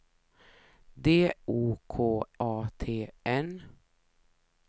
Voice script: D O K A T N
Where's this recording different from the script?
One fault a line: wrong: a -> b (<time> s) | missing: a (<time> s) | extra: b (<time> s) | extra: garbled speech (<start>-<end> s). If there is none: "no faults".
no faults